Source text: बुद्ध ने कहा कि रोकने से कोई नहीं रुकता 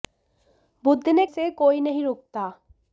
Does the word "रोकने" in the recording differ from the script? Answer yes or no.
yes